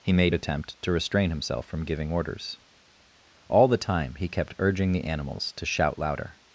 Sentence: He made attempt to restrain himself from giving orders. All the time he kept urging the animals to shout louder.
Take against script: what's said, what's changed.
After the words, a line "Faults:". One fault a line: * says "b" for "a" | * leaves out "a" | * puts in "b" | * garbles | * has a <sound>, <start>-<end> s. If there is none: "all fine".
He made attempt to restrain himself from giving orders. All the time he kept urging the animals to shout louder.
Faults:
all fine